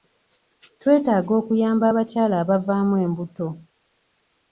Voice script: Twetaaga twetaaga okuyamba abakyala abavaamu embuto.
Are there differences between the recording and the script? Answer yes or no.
yes